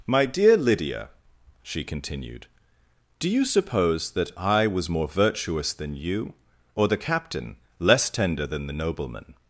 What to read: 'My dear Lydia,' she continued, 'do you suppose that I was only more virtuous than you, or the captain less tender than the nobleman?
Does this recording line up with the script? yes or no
no